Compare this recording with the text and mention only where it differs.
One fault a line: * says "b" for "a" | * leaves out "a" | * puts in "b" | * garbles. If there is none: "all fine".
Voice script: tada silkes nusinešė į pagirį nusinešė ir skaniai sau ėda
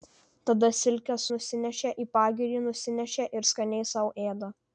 all fine